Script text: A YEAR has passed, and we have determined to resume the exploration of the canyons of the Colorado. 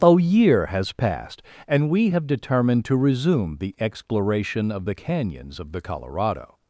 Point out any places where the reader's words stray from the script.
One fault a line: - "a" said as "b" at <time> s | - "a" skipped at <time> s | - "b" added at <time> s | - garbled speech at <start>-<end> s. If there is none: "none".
none